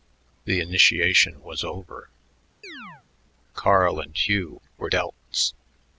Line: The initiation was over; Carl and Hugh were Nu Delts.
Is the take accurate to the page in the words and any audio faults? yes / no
no